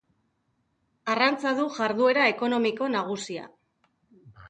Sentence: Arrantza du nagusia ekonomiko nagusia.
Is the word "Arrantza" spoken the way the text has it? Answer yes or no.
yes